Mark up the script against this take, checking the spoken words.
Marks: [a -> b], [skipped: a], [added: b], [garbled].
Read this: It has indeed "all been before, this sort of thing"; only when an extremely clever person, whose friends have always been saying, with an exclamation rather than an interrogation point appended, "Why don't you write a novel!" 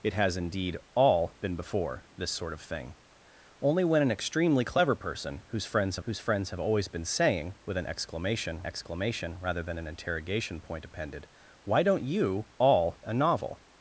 It has indeed "all been before, this sort of thing"; only when an extremely clever person, whose friends have [added: whose friends have] always been saying, with an exclamation [added: exclamation] rather than an interrogation point appended, "Why don't you [write -> all] a novel!"